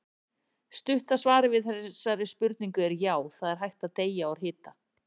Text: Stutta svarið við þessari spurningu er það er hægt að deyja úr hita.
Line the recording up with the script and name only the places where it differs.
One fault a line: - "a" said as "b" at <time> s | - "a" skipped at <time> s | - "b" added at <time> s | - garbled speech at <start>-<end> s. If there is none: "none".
- "já" added at 3.0 s